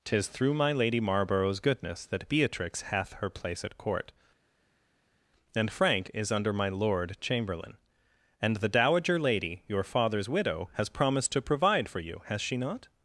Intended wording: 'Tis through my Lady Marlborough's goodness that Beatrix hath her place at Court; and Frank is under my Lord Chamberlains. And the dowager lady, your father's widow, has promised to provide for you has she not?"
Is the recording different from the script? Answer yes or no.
yes